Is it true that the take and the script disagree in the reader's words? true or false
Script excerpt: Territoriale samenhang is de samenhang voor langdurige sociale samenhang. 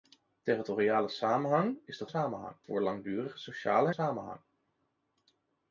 false